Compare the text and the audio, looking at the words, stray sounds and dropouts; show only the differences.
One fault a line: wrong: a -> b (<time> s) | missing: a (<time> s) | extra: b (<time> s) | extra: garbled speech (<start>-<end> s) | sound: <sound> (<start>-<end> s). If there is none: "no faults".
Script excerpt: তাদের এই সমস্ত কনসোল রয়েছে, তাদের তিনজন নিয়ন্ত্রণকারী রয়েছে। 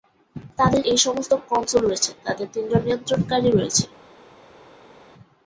no faults